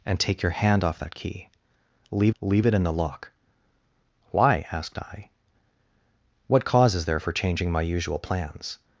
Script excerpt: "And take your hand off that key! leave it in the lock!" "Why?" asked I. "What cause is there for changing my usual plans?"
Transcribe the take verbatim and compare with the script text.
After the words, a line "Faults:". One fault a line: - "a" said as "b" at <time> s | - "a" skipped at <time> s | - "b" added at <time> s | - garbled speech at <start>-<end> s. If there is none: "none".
"And take your hand off that key! leave leave it in the lock!" "Why?" asked I. "What cause is there for changing my usual plans?"
Faults:
- "leave" added at 2.4 s